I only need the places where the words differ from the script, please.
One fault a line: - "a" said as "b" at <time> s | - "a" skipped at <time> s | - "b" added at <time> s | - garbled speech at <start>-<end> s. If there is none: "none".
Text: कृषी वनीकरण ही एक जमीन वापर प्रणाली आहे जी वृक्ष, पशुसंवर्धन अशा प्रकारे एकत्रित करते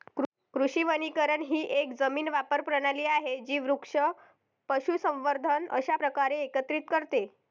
none